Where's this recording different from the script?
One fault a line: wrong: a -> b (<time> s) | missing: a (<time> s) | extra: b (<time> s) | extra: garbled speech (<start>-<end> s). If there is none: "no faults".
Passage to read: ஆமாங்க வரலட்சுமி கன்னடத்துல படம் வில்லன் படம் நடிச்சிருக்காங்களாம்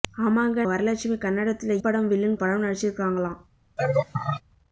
no faults